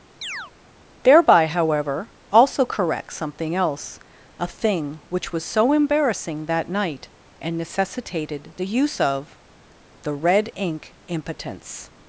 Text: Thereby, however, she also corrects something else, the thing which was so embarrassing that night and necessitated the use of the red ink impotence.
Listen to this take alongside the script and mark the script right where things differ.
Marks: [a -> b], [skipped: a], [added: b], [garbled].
Thereby, however, [skipped: she] also corrects something else, [the -> a] thing which was so embarrassing that night and necessitated the use of the red ink impotence.